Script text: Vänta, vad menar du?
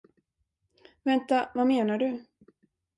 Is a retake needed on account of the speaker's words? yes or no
no